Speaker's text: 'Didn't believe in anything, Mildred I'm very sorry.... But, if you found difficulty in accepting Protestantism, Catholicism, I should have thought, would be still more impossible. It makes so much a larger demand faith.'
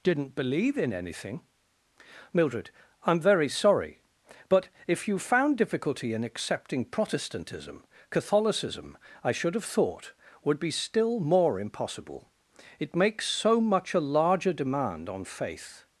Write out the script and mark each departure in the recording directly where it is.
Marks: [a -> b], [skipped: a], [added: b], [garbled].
'Didn't believe in anything, Mildred I'm very sorry.... But, if you found difficulty in accepting Protestantism, Catholicism, I should have thought, would be still more impossible. It makes so much a larger demand [added: on] faith.'